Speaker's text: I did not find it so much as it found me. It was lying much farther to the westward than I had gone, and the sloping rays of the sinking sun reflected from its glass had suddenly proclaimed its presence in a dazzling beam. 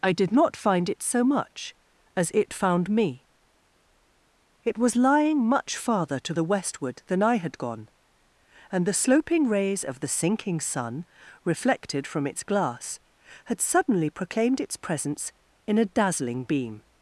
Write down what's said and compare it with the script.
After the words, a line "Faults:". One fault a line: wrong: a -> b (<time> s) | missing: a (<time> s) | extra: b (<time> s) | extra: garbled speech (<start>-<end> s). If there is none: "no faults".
I did not find it so much as it found me. It was lying much farther to the westward than I had gone, and the sloping rays of the sinking sun reflected from its glass had suddenly proclaimed its presence in a dazzling beam.
Faults:
no faults